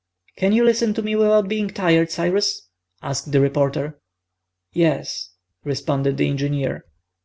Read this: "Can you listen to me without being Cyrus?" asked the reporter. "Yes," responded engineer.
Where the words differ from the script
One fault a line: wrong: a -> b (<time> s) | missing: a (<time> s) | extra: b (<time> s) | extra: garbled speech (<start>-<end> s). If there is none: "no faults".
extra: tired (1.7 s)
extra: the (6.2 s)